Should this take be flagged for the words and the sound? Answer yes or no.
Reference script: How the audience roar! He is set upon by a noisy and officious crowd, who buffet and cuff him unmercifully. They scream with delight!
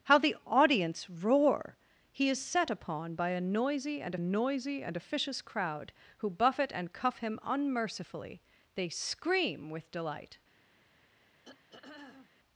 yes